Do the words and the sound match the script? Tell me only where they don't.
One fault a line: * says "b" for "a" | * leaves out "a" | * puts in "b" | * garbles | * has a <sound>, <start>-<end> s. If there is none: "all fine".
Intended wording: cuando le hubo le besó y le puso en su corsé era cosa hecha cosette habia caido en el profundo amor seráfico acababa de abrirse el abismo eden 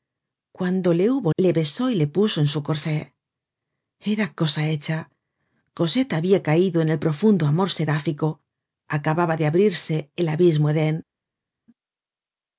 all fine